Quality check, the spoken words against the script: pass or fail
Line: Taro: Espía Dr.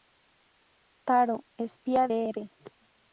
pass